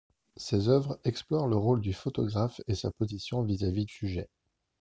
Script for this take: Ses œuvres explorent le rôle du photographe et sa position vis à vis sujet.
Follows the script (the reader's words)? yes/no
yes